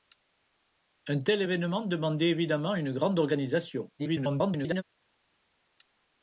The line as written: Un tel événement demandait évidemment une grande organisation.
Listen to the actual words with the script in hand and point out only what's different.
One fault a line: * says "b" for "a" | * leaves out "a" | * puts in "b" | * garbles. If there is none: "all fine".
* garbles